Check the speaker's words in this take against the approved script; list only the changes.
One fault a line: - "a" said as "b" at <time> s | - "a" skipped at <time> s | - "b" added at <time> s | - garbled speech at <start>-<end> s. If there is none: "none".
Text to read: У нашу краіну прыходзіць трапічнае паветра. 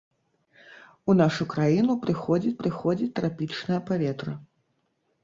- "прыходзіць" added at 2.6 s